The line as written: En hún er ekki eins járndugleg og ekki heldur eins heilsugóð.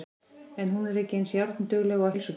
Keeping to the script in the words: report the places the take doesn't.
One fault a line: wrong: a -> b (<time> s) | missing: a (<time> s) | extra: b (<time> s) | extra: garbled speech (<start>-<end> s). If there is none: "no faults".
missing: ekki heldur eins (2.1 s)